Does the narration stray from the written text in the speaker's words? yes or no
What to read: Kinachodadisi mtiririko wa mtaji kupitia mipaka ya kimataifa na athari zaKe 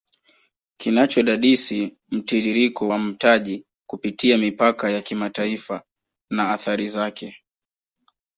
no